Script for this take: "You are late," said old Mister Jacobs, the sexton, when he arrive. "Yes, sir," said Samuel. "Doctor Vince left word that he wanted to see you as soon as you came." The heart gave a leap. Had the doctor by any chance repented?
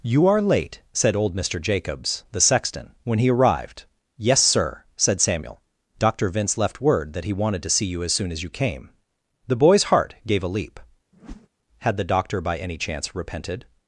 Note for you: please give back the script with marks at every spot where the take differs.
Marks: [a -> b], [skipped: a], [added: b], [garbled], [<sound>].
"You are late," said old Mister Jacobs, the sexton, when he [arrive. -> arrived] "Yes, sir," said Samuel. "Doctor Vince left word that he wanted to see you as soon as you came." The [added: boy's] heart gave a leap. [whoosh] Had the doctor by any chance repented?